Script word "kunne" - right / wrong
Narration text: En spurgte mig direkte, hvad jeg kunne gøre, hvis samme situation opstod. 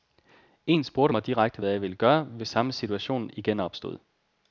wrong